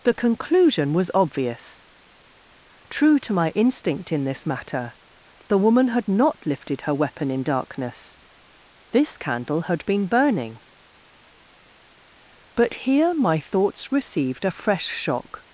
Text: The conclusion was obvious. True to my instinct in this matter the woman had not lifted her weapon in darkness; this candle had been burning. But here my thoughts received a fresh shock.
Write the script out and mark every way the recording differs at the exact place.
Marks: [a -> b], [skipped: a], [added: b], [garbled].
The conclusion was obvious. True to my instinct in this matter the woman had not lifted her weapon in darkness; this candle had been burning. But here my thoughts received a fresh shock.